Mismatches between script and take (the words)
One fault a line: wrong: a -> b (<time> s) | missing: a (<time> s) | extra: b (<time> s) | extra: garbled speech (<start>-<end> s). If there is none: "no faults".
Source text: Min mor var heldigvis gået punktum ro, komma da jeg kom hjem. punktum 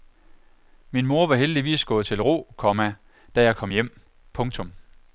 wrong: punktum -> til (2.0 s)